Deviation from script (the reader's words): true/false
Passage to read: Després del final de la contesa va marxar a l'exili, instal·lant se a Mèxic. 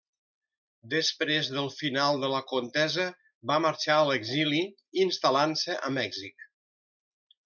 false